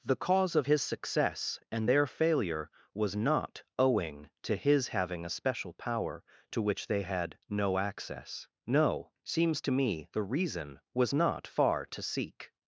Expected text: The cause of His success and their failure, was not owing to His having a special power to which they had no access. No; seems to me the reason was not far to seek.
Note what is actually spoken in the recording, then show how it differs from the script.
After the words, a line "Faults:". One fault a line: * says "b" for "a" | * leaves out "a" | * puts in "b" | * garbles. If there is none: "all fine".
The cause of His success and their failure, was not owing to His having a special power to which they had no access. No; seems to me the reason was not far to seek.
Faults:
all fine